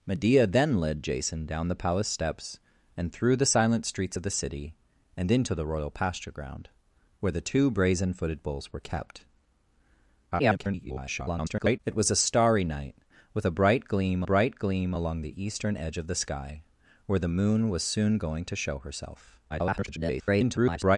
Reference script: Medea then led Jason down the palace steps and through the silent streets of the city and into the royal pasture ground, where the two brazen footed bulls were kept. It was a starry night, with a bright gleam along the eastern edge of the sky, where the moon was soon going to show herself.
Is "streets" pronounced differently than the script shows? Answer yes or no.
no